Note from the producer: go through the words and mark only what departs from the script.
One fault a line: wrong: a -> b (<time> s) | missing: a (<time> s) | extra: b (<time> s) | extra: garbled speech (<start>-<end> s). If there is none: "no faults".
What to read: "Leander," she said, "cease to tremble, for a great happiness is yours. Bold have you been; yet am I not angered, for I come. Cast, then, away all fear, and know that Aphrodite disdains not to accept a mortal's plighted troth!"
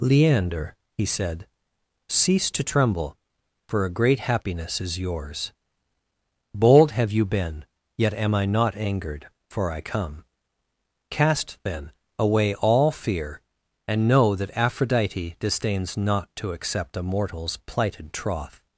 wrong: she -> he (1.0 s)